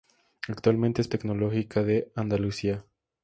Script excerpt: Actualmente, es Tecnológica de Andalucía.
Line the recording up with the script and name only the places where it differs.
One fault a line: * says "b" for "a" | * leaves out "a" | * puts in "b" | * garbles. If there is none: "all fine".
all fine